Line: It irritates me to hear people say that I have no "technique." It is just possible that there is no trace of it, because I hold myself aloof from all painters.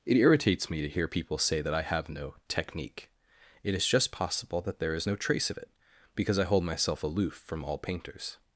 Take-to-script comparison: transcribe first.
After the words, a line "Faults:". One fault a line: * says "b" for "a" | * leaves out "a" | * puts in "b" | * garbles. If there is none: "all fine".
It irritates me to hear people say that I have no "technique." It is just possible that there is no trace of it, because I hold myself aloof from all painters.
Faults:
all fine